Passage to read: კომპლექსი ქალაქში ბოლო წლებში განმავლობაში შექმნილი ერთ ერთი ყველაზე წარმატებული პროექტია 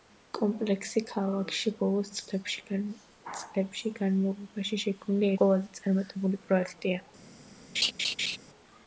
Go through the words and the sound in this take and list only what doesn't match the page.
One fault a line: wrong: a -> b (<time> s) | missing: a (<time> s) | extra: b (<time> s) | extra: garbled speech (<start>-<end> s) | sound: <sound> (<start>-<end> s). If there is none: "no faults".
missing: ერთ ერთი (5.3 s)
sound: laugh (7.7-8.4 s)